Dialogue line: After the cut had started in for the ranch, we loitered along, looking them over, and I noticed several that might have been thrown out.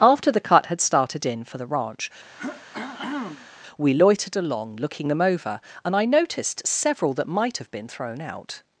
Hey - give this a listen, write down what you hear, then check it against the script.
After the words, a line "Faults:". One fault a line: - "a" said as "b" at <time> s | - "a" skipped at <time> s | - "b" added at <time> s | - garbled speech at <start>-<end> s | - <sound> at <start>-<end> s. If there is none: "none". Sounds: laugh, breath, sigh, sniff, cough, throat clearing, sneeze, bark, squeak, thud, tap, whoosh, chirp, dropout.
After the cut had started in for the ranch, we loitered along, looking them over, and I noticed several that might have been thrown out.
Faults:
- throat clearing at 2.4-3.5 s